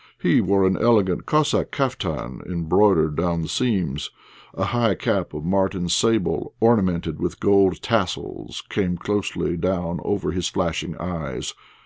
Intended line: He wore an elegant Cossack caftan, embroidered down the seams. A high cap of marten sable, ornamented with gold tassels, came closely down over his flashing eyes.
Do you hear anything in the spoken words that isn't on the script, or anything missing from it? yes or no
no